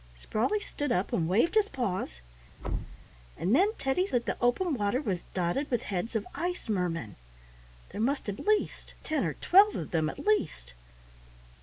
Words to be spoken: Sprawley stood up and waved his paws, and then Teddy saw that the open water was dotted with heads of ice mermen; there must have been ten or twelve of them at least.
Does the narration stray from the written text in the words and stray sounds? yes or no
yes